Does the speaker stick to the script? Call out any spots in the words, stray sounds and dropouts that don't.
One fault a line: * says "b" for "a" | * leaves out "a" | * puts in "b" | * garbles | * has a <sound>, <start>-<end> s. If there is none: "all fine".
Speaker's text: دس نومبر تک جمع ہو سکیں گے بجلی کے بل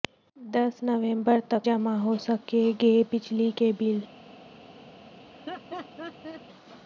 * has a laugh, 5.3-6.4 s